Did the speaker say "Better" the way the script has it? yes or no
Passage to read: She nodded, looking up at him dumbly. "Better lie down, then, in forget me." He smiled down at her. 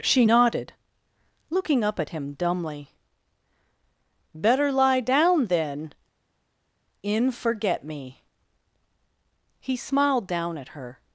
yes